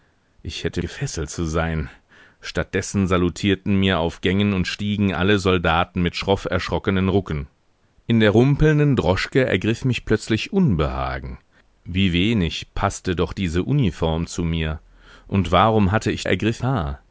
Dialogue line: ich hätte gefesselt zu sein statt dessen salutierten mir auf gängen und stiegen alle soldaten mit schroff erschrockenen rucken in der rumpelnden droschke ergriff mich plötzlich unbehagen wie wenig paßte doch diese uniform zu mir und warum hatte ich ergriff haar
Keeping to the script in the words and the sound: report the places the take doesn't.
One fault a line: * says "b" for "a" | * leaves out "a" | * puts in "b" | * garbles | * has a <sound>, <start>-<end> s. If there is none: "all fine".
all fine